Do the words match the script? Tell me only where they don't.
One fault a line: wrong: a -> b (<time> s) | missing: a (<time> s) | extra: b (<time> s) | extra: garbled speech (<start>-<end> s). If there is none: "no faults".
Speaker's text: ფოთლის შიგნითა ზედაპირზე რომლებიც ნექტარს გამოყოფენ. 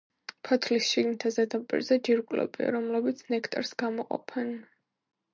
extra: ჯირკვლებია (2.1 s)